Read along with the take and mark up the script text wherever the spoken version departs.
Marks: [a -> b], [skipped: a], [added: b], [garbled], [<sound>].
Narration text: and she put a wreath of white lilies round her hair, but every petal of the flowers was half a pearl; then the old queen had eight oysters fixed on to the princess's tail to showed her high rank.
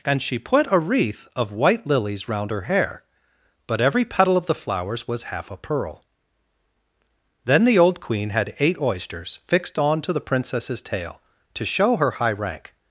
and she put a wreath of white lilies round her hair, but every petal of the flowers was half a pearl; then the old queen had eight oysters fixed on to the princess's tail to [showed -> show] her high rank.